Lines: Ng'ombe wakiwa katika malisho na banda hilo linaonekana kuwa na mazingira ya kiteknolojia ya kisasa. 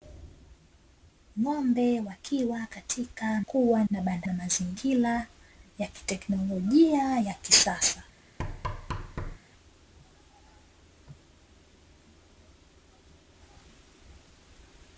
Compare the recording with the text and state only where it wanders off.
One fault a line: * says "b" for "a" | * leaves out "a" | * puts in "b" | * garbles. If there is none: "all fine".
* says "kuwa" for "malisho"
* leaves out "hilo linaonekana kuwa"